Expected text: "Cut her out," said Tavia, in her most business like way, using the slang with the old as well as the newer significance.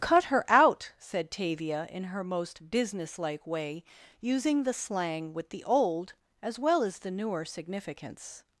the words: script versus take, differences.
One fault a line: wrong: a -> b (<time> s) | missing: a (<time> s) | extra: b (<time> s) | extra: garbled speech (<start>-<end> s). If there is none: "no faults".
no faults